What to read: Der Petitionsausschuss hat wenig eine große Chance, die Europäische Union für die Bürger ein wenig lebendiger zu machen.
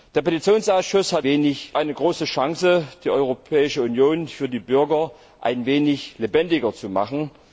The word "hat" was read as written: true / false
true